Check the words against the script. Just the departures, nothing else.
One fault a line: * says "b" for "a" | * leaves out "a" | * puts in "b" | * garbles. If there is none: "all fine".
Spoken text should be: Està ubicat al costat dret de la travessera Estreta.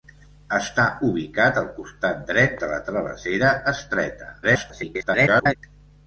* garbles